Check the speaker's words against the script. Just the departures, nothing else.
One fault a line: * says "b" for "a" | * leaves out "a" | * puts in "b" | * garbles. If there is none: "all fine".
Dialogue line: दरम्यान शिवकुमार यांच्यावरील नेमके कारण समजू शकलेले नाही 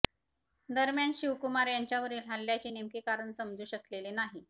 * puts in "हल्ल्याचे"